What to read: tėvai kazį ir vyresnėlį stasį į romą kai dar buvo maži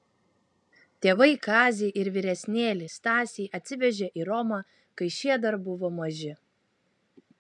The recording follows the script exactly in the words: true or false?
false